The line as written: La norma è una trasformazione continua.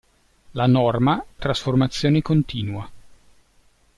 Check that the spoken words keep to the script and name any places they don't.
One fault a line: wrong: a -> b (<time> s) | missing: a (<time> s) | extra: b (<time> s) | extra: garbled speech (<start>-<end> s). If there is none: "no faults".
missing: è una (1.2 s)